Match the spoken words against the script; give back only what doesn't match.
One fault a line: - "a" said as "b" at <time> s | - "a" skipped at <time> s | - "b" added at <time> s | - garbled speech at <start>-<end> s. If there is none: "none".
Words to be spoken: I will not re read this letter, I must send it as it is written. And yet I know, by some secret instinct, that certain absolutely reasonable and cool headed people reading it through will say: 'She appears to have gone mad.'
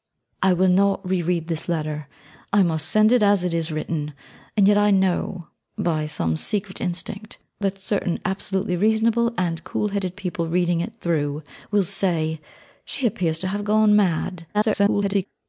- garbled speech at 14.5-15.3 s